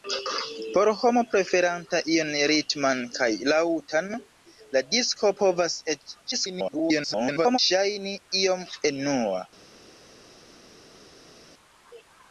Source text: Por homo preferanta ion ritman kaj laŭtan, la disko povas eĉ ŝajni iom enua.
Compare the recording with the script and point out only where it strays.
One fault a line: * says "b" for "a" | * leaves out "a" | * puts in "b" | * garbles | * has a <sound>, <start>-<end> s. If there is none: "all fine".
* garbles